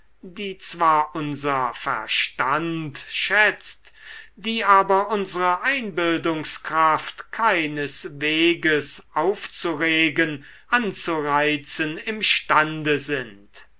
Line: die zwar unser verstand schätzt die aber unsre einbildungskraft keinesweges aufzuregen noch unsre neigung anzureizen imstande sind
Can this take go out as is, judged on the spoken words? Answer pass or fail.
fail